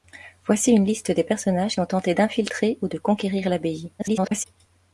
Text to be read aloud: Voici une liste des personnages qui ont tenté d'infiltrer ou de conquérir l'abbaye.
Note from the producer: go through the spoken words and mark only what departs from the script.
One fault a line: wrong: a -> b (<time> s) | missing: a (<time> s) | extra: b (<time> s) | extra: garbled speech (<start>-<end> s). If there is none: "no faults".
missing: qui (1.8 s)
extra: garbled speech (4.0-4.4 s)